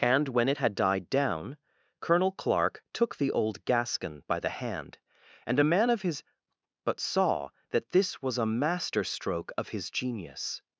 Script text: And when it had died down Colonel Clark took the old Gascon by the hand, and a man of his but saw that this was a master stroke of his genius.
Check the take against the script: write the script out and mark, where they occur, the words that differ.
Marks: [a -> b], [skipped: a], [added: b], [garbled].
And when it had died down Colonel Clark took the old Gascon by the hand, and a man of his but saw that this was a master stroke of his genius.